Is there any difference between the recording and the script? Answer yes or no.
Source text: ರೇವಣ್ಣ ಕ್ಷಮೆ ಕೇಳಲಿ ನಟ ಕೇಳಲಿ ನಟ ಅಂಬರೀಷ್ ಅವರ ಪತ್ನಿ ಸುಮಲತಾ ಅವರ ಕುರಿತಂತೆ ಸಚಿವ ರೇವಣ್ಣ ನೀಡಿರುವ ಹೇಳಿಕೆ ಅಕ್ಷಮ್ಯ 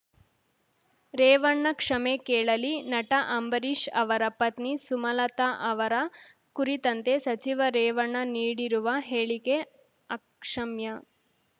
yes